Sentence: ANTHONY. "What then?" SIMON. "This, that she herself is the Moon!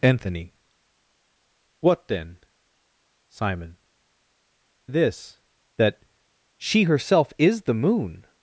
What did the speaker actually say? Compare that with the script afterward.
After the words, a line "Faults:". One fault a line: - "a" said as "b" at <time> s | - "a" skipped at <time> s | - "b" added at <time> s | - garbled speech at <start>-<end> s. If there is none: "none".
ANTHONY. "What then?" SIMON. "This, that she herself is the Moon!
Faults:
none